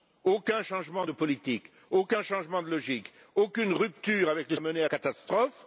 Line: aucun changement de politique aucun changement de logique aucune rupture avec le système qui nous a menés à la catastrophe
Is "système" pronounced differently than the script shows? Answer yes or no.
yes